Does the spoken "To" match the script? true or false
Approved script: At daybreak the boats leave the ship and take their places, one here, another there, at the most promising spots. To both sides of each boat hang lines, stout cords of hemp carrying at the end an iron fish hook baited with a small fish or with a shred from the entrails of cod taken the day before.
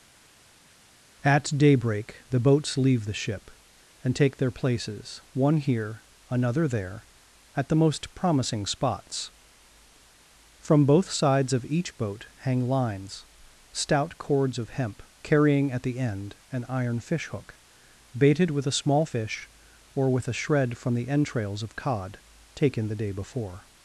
false